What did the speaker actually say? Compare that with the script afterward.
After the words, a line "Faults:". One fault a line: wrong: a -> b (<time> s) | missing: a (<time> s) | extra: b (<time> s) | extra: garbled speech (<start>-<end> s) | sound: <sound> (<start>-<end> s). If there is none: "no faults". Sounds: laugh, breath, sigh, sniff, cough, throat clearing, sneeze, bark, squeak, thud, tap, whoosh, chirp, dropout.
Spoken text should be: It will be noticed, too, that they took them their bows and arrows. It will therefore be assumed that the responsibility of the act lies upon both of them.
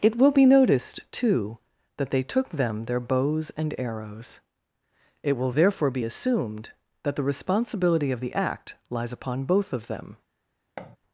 It will be noticed, too, that they took them their bows and arrows. It will therefore be assumed that the responsibility of the act lies upon both of them.
Faults:
sound: thud (10.8-11.0 s)